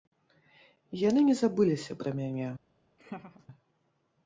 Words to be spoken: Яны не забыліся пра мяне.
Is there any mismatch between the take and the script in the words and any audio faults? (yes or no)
yes